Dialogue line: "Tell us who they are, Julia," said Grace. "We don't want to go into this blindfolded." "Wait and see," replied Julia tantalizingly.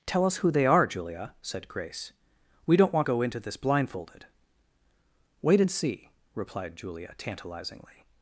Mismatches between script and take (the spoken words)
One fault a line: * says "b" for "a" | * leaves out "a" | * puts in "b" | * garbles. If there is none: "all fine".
* leaves out "to"